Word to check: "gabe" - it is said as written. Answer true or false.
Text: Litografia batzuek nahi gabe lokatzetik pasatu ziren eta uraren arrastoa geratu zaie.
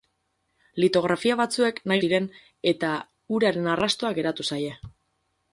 false